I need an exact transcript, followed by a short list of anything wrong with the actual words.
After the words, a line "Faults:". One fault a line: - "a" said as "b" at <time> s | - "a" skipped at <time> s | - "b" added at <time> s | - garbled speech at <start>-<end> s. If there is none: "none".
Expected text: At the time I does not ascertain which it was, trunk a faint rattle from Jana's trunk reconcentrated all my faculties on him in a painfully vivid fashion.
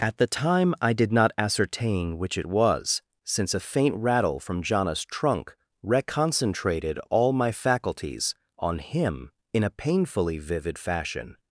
At the time I did not ascertain which it was, since a faint rattle from Jana's trunk reconcentrated all my faculties on him in a painfully vivid fashion.
Faults:
- "does" said as "did" at 0.9 s
- "trunk" said as "since" at 3.2 s